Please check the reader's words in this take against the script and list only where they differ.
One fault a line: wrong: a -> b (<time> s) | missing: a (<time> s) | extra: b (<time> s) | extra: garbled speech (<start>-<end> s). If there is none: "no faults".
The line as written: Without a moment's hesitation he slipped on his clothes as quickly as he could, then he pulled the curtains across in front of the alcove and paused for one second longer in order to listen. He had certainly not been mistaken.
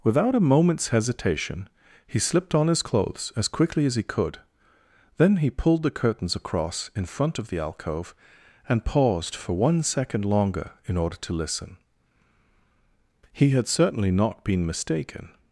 no faults